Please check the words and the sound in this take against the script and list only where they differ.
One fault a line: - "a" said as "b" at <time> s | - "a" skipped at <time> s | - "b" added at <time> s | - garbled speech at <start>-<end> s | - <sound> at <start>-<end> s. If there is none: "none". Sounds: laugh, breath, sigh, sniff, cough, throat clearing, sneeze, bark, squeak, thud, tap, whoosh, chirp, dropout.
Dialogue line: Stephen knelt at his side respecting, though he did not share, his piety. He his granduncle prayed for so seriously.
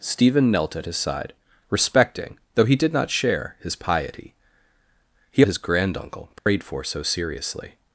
- dropout at 6.4-6.5 s